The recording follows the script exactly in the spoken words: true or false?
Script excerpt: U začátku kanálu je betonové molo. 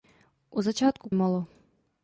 false